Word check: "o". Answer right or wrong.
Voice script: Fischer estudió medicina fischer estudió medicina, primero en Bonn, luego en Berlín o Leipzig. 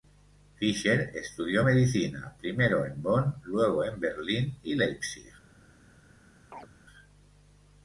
wrong